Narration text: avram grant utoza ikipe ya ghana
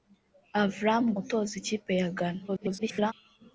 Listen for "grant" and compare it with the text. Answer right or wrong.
wrong